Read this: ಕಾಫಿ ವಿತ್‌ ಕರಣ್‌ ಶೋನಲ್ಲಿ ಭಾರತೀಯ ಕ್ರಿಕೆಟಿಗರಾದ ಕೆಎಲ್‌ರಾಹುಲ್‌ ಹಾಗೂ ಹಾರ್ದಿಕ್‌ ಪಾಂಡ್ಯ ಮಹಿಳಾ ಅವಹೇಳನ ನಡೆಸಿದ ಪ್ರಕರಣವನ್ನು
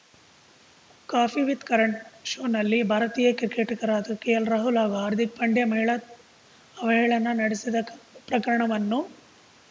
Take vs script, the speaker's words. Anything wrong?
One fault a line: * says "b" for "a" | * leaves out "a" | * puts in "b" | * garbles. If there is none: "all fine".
all fine